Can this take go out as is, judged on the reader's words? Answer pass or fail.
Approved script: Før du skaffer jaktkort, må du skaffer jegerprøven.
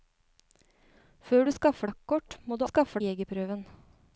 pass